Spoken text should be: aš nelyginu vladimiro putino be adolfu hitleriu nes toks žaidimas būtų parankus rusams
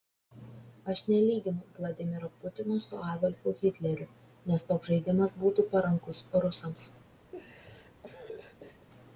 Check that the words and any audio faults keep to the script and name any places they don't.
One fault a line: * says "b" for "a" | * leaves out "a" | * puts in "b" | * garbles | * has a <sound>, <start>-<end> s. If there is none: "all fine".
* says "su" for "be"
* has a laugh, 7.3-8.9 s